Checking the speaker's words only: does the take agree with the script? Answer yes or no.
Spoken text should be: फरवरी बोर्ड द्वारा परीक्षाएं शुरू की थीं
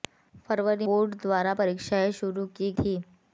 yes